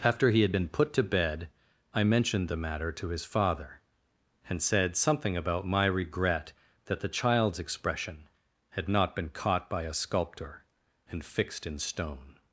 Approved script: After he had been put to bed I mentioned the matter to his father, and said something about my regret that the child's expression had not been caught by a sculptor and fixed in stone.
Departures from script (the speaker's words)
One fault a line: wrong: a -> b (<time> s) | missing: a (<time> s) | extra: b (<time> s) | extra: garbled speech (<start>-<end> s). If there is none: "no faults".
no faults